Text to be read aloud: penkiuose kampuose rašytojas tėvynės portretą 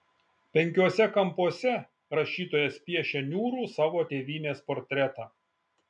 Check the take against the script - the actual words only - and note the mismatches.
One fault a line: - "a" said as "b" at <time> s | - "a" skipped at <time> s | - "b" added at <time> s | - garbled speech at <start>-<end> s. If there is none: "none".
- "piešia niūrų savo" added at 2.9 s